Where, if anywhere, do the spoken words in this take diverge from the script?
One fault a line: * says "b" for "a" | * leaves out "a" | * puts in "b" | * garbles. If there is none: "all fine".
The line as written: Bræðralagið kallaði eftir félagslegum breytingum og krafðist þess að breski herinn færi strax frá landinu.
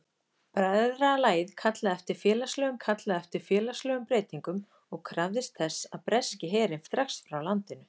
* puts in "kallaði eftir félagslegum"
* leaves out "færi"